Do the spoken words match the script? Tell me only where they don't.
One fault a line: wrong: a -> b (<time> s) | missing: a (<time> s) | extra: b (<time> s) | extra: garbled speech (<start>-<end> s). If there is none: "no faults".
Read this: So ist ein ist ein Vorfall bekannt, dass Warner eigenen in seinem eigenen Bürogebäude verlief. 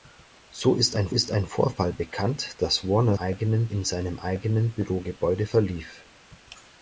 no faults